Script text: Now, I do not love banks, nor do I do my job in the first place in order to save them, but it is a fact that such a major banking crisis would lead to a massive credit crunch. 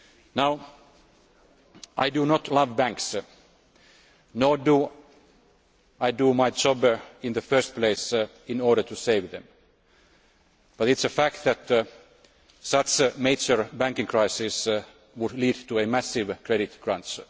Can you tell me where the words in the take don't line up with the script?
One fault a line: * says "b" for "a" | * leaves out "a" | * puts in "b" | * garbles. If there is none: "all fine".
all fine